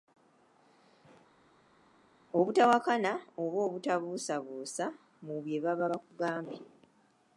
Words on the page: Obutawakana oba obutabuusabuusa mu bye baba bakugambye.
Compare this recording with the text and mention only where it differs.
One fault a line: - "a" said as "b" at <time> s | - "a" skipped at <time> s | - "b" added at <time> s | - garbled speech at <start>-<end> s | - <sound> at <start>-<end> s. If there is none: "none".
none